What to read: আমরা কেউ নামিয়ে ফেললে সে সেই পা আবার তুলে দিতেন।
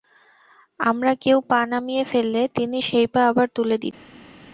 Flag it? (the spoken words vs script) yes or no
yes